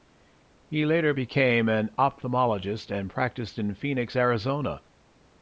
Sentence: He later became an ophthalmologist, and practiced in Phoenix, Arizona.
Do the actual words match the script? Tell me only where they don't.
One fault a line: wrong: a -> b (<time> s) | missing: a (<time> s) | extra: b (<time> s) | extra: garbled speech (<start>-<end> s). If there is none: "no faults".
no faults